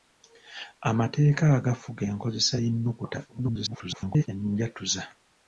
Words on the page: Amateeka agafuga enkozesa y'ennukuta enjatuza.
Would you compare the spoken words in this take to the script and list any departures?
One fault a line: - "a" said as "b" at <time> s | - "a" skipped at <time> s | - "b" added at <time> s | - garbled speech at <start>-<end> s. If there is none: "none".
- garbled speech at 3.3-4.3 s